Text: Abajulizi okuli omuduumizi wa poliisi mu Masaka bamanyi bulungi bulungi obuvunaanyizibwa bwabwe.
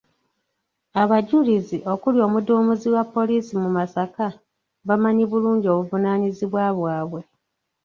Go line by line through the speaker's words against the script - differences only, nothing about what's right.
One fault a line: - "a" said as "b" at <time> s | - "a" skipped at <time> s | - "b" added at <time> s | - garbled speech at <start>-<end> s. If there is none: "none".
- "bulungi" skipped at 5.7 s